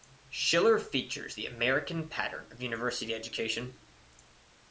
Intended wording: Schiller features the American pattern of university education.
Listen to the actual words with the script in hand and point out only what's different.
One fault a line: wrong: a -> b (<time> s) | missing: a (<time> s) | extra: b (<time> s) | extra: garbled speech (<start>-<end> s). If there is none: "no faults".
no faults